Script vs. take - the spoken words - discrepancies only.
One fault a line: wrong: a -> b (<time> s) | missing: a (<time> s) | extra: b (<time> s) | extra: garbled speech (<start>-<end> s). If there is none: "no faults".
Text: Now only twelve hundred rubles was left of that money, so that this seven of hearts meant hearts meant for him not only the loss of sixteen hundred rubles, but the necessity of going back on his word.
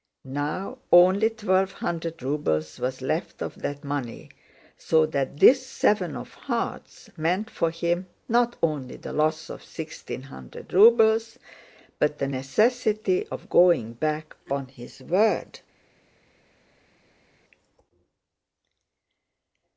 missing: hearts meant (7.5 s)